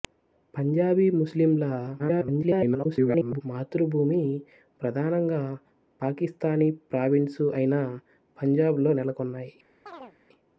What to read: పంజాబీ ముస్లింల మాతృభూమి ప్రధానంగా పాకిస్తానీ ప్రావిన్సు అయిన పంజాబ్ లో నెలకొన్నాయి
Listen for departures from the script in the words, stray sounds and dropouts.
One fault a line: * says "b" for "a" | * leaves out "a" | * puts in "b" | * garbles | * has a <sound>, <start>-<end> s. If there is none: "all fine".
* garbles
* has a chirp, 9.9-10.2 s